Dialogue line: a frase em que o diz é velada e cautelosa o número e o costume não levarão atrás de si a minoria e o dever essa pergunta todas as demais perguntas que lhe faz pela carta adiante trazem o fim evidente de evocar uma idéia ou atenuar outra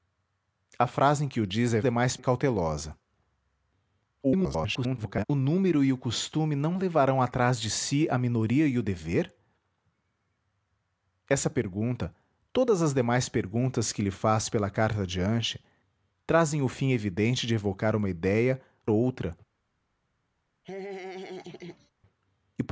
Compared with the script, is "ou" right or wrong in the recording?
wrong